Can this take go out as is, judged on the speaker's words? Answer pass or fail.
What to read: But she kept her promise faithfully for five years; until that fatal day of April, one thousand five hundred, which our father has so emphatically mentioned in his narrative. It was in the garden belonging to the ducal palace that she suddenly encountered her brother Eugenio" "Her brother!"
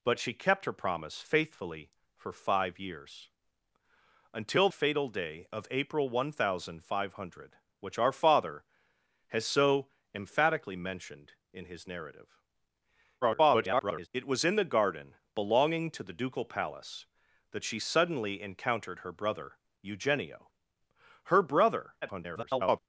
fail